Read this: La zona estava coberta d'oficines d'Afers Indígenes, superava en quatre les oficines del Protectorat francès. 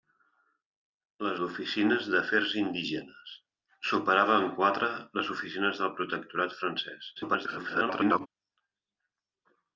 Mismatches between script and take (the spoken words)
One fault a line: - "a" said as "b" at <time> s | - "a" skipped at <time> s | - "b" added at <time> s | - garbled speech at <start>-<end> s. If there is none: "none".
- "zona estava coberta" skipped at 1.3 s
- garbled speech at 7.2-8.3 s